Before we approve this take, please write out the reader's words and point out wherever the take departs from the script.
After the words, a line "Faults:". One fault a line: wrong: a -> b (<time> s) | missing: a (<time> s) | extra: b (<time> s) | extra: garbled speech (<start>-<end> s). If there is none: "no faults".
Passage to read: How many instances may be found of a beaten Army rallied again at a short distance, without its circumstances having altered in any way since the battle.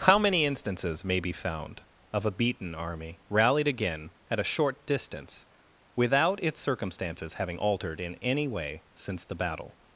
How many instances may be found of a beaten Army rallied again at a short distance, without its circumstances having altered in any way since the battle.
Faults:
no faults